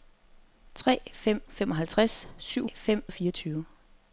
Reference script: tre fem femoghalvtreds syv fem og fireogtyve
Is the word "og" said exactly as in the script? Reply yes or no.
yes